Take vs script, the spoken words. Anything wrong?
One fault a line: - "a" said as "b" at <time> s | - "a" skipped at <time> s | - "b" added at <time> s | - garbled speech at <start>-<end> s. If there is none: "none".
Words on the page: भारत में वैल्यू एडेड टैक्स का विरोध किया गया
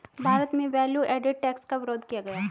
none